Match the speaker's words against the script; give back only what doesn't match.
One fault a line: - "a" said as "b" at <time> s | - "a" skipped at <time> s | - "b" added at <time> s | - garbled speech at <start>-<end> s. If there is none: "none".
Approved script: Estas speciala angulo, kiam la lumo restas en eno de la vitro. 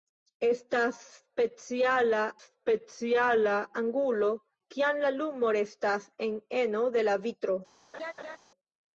- "speciala" added at 2.5 s